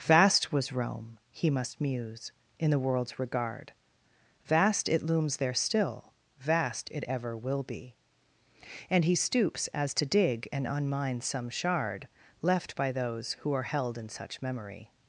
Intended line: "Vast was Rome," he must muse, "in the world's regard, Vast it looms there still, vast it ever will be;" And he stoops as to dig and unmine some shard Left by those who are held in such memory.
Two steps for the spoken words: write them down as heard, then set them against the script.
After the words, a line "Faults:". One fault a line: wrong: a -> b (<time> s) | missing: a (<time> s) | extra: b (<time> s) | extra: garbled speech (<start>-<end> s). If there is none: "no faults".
"Vast was Rome," he must muse, "in the world's regard, Vast it looms there still, vast it ever will be;" And he stoops as to dig and unmine some shard Left by those who are held in such memory.
Faults:
no faults